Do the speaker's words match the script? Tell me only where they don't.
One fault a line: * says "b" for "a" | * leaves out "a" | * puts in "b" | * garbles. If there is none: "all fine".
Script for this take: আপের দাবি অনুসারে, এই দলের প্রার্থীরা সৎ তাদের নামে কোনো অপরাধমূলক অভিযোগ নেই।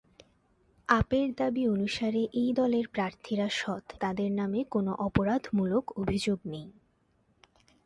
all fine